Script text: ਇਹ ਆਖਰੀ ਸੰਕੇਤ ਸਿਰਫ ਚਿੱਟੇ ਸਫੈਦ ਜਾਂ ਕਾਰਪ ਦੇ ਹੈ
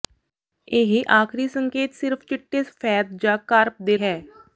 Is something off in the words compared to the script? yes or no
no